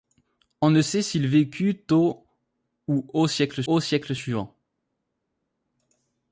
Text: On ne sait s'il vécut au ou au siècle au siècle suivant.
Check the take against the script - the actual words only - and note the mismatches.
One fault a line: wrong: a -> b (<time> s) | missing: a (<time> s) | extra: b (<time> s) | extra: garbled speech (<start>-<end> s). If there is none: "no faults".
no faults